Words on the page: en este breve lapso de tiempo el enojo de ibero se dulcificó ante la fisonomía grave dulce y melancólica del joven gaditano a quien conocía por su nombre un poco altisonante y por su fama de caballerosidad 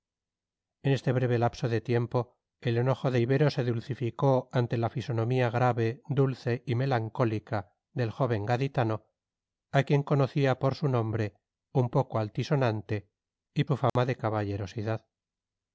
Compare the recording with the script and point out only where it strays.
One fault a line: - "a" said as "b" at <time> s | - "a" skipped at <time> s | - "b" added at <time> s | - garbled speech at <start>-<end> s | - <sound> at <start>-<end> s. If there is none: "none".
- "por" skipped at 13.7 s
- dropout at 13.9-14.0 s